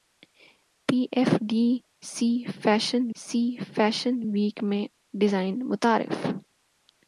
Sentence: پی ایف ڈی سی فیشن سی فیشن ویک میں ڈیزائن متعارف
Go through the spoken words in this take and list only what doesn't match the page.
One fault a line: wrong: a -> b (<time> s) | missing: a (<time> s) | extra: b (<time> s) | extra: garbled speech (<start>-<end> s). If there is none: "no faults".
no faults